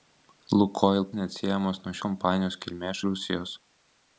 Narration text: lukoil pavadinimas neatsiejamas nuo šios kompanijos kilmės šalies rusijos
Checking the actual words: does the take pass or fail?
fail